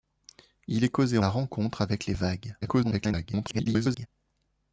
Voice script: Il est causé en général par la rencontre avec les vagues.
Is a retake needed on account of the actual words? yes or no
yes